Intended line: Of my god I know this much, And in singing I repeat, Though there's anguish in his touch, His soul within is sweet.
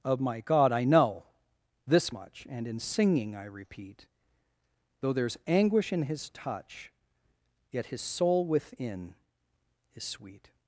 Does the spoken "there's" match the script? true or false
true